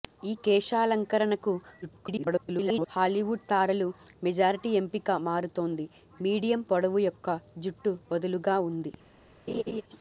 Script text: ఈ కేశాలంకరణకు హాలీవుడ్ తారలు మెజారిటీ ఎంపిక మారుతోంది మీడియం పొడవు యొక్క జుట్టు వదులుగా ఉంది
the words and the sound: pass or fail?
fail